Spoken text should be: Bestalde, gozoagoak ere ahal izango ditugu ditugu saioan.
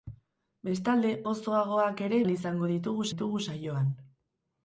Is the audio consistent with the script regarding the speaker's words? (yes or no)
yes